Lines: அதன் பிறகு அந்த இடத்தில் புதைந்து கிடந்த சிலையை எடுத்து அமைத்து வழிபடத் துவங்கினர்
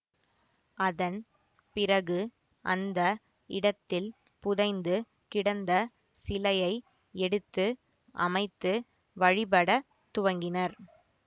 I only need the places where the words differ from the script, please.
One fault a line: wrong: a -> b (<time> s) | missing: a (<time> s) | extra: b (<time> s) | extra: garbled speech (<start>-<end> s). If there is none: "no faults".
no faults